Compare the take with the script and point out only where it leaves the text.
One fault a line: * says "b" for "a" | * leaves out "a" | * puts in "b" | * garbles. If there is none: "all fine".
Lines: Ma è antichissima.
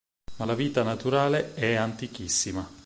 * puts in "la vita naturale"